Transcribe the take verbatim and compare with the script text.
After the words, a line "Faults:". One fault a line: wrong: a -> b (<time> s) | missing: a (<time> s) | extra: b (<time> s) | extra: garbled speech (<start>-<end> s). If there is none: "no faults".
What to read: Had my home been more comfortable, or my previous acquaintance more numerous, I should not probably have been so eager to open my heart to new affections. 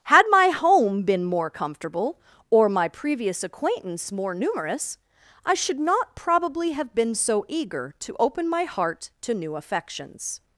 Had my home been more comfortable, or my previous acquaintance more numerous, I should not probably have been so eager to open my heart to new affections.
Faults:
no faults